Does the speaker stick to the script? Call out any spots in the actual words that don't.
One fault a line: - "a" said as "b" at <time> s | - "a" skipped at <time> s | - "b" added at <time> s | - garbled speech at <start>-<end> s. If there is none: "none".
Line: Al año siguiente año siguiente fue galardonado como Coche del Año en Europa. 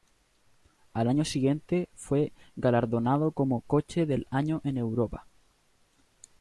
- "año siguiente" skipped at 1.9 s